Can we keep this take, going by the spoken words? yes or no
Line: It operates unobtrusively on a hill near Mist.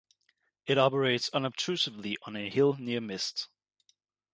yes